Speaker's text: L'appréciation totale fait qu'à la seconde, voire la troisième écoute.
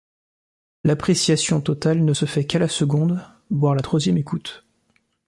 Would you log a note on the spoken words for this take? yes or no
yes